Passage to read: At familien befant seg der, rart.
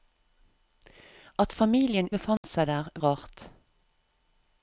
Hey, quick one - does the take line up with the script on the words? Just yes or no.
yes